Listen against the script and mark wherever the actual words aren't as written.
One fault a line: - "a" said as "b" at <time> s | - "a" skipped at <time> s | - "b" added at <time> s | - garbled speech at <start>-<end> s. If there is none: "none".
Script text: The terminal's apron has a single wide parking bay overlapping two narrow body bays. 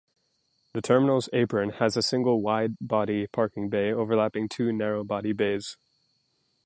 - "body" added at 2.8 s